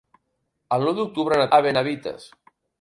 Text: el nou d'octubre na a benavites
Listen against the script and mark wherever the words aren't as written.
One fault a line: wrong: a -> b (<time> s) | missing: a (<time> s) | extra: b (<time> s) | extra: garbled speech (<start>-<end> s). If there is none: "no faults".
no faults